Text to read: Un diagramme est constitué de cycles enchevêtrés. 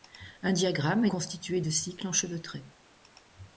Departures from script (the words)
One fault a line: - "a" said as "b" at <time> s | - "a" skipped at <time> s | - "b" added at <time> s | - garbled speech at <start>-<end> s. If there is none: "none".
none